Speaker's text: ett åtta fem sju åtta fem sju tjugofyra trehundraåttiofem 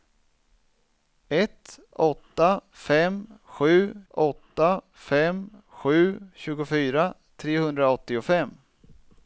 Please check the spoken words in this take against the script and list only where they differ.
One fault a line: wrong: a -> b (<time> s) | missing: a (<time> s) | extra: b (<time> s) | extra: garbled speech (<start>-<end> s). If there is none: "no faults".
no faults